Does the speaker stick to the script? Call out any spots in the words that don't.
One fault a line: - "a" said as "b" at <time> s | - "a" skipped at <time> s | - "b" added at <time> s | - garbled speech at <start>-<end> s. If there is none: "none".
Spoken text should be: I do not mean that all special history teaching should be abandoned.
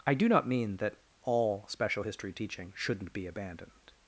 - "should" said as "shouldn't" at 2.7 s